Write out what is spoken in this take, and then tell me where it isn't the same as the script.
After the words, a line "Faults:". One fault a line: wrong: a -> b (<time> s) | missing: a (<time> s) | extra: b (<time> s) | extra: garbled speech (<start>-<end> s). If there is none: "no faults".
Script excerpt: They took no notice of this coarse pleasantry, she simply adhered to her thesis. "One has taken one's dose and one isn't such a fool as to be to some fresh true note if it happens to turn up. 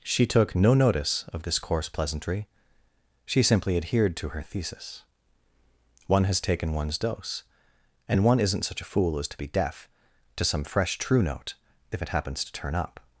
She took no notice of this coarse pleasantry, she simply adhered to her thesis. "One has taken one's dose and one isn't such a fool as to be deaf to some fresh true note if it happens to turn up.
Faults:
wrong: They -> She (0.0 s)
extra: deaf (9.5 s)